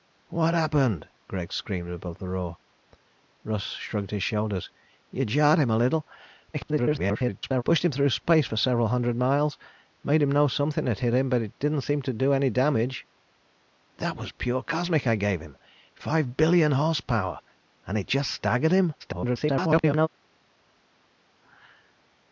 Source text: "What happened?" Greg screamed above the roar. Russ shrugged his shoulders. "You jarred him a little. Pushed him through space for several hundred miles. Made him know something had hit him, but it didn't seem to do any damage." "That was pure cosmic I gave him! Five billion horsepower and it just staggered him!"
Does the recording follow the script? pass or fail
fail